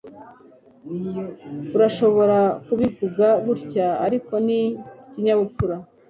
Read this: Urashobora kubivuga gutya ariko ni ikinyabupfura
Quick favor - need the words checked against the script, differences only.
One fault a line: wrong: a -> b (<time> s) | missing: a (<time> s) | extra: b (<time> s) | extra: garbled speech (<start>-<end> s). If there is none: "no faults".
no faults